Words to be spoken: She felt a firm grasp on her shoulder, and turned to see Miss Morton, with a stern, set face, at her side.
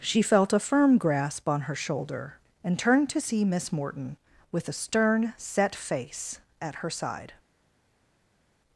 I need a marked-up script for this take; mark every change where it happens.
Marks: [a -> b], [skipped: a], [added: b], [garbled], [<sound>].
She felt a firm grasp on her shoulder, and turned to see Miss Morton, with a stern, set face, at her side.